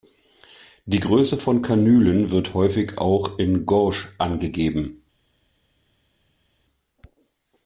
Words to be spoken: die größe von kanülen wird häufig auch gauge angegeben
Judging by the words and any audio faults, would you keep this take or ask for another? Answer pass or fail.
fail